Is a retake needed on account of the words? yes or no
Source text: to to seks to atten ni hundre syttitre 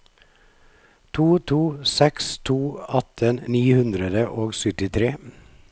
yes